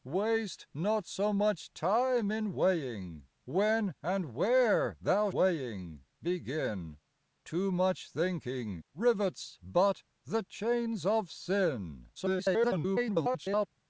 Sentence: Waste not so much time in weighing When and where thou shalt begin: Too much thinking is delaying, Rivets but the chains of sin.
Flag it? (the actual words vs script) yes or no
yes